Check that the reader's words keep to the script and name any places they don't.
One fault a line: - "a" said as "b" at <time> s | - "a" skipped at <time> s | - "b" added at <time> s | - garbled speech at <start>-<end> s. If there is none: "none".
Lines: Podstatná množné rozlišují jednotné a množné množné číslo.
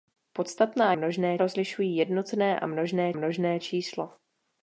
none